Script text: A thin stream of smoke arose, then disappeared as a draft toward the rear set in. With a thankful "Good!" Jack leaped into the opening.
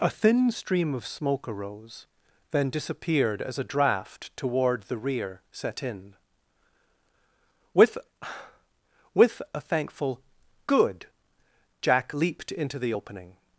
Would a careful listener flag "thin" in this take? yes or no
no